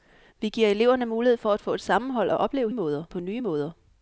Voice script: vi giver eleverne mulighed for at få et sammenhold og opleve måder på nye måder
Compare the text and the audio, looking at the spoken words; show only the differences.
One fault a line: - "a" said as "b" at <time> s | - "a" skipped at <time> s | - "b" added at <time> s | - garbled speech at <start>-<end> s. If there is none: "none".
none